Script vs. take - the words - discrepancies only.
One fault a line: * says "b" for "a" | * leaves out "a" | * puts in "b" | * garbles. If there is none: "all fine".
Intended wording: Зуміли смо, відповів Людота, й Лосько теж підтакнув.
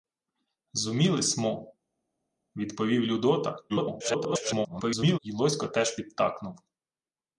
* garbles